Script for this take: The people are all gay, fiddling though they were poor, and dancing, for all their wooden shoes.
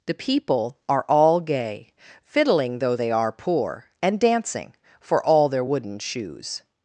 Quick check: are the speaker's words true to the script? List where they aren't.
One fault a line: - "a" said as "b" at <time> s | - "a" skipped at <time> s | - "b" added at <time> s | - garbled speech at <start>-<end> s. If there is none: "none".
- "were" said as "are" at 3.1 s